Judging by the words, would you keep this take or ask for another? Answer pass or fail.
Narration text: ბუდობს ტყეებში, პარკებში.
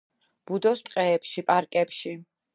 pass